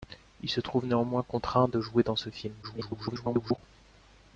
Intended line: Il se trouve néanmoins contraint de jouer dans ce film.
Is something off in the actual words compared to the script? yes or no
yes